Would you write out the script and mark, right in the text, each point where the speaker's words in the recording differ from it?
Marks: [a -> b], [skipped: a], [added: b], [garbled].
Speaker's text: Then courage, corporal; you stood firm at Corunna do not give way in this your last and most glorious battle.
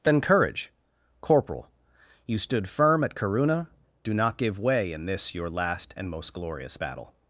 Then courage, corporal; you stood firm at Corunna do not give way in this your last and most glorious battle.